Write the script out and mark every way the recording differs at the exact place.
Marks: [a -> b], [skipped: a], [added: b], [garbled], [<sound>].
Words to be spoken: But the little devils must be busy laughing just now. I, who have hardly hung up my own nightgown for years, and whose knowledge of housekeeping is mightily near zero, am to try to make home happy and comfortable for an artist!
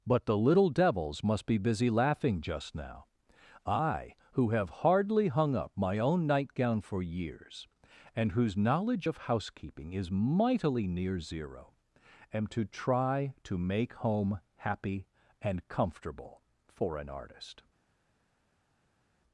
But the little devils must be busy laughing just now. I, who have hardly hung up my own nightgown for years, and whose knowledge of housekeeping is mightily near zero, am to try to make home happy and comfortable for an artist!